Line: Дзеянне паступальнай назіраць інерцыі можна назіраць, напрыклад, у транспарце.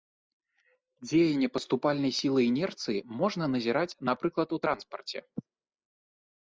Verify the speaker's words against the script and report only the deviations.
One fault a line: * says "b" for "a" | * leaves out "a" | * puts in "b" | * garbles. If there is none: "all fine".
* says "сілы" for "назіраць"